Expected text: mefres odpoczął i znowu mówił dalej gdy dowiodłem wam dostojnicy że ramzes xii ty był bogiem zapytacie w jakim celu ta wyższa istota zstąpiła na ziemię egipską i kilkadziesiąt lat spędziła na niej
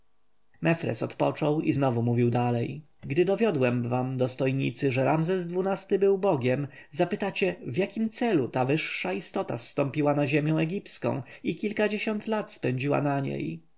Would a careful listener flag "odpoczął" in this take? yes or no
no